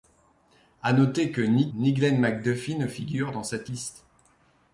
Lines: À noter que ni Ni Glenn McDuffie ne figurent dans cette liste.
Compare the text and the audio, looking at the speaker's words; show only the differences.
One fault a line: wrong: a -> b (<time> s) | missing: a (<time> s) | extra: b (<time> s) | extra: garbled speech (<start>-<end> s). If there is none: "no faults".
no faults